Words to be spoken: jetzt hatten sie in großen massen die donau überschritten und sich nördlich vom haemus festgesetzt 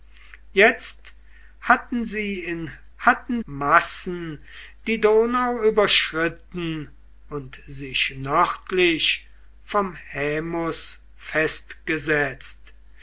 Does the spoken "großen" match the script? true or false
false